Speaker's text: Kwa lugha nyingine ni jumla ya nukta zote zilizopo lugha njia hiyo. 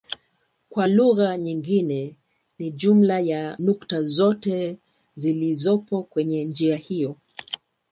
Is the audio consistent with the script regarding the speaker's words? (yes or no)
no